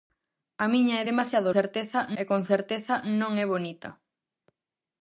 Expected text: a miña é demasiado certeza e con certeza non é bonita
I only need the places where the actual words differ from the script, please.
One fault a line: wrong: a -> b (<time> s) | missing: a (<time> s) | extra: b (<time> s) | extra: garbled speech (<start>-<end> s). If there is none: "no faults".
no faults